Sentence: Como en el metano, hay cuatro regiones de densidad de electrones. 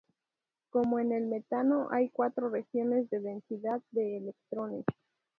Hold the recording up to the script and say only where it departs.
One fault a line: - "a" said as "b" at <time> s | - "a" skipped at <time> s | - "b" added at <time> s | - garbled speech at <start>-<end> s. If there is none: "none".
none